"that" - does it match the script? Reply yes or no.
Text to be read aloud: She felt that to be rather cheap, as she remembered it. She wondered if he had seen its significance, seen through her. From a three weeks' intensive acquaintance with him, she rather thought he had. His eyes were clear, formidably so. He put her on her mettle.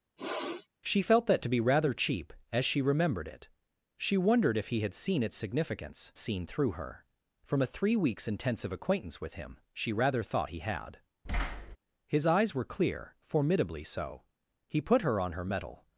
yes